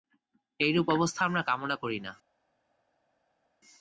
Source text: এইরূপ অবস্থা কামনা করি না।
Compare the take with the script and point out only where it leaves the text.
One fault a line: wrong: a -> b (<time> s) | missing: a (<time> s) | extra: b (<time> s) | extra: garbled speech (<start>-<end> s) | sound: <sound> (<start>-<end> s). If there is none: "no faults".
extra: আমরা (1.2 s)